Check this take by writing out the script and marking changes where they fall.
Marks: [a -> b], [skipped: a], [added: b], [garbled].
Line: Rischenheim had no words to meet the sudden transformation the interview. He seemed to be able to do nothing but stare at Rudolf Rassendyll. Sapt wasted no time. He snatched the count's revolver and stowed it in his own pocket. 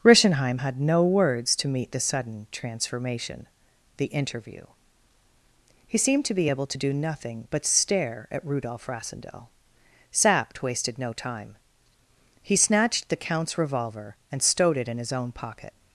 Rischenheim had no words to meet the sudden transformation the interview. He seemed to be able to do nothing but stare at Rudolf Rassendyll. Sapt wasted no time. He snatched the count's revolver and stowed it in his own pocket.